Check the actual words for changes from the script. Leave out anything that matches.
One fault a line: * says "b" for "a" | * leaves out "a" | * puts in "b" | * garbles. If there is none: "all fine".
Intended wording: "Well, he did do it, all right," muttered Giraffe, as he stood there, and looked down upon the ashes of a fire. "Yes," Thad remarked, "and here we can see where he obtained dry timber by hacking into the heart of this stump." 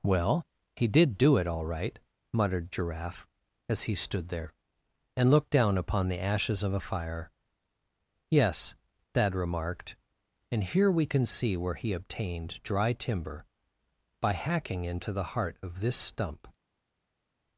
all fine